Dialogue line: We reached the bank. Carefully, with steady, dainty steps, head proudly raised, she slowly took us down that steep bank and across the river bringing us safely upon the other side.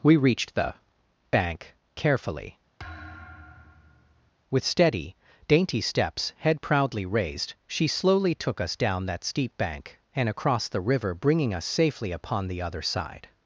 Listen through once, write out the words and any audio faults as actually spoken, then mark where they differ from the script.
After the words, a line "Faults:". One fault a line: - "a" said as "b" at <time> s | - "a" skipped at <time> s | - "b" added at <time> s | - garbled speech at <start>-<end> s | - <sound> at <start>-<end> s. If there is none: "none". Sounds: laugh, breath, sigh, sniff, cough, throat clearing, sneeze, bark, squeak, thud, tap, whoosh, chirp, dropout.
We reached the bank. Carefully, with steady, dainty steps, head proudly raised, she slowly took us down that steep bank and across the river bringing us safely upon the other side.
Faults:
- thud at 2.8-4.3 s